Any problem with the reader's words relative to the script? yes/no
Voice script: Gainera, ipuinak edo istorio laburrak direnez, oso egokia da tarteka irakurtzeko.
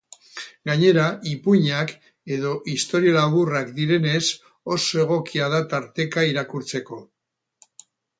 no